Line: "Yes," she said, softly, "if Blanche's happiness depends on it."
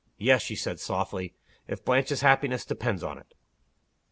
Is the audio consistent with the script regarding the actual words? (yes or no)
yes